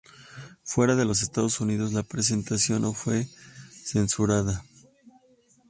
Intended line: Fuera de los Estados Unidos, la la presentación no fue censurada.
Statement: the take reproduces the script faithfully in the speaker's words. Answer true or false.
false